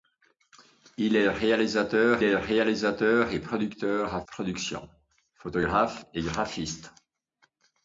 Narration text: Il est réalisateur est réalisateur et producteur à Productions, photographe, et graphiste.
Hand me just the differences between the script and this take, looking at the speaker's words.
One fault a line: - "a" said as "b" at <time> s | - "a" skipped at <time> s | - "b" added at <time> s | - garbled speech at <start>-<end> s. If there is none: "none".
none